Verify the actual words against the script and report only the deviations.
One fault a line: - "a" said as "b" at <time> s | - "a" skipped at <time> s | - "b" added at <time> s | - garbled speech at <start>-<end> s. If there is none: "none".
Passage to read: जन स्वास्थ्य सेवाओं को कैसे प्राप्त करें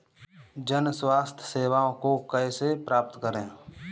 none